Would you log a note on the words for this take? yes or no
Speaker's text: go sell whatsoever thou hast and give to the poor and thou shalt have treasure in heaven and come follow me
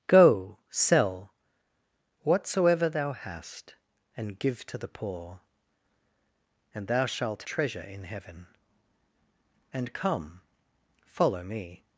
yes